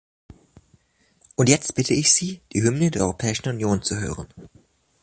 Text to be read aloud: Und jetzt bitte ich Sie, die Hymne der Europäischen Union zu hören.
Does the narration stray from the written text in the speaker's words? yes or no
no